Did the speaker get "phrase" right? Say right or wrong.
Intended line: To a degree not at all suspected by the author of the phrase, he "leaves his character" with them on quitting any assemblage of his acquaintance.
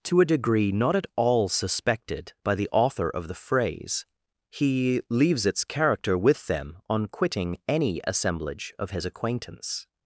right